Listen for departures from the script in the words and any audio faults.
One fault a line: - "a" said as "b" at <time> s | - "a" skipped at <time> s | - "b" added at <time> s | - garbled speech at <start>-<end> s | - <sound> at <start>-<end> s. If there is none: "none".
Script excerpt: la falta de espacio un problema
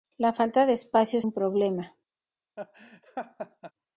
- laugh at 2.6-3.7 s